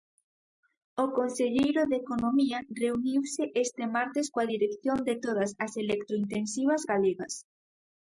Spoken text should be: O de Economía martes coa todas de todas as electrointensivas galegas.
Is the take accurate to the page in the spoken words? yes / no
no